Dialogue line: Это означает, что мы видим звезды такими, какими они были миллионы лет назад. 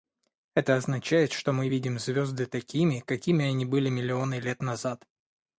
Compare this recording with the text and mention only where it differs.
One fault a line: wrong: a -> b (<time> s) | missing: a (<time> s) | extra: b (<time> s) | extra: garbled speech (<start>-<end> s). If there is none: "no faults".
no faults